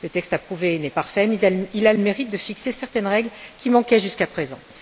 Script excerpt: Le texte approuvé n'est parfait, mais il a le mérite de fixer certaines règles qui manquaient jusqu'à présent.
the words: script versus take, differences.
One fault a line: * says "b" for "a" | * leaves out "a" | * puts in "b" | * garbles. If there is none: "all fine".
all fine